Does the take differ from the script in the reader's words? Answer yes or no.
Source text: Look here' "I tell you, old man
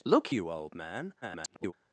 yes